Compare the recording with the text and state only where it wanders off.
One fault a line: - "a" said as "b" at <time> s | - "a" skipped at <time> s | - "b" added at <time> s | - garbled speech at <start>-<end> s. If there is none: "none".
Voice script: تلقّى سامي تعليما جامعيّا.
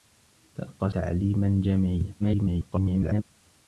- "سامي" skipped at 0.9 s
- garbled speech at 2.2-3.2 s